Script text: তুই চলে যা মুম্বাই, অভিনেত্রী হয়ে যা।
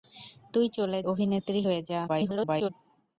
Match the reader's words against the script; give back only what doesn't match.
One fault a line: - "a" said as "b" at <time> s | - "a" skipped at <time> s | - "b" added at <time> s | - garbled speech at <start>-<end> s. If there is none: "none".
- "যা মুম্বাই" skipped at 1.0 s
- garbled speech at 2.1-2.7 s